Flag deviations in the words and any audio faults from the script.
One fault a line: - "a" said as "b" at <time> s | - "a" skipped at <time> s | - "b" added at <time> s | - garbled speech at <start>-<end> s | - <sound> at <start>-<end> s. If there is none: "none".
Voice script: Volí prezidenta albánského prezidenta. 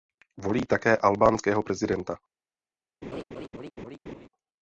- "prezidenta" said as "také" at 0.6 s
- laugh at 3.0-4.3 s